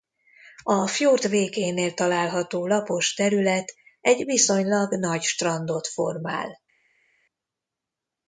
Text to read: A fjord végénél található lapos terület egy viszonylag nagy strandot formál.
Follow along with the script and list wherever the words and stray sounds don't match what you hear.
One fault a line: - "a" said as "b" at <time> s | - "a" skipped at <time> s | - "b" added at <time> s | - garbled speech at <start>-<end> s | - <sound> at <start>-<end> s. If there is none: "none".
none